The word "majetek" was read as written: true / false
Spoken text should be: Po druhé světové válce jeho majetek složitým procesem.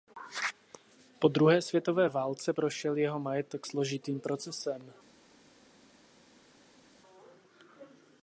true